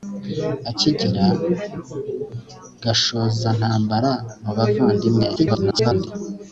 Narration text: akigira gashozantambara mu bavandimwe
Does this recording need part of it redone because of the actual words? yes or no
yes